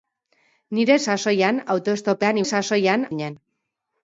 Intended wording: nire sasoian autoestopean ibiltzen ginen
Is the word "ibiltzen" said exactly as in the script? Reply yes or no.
no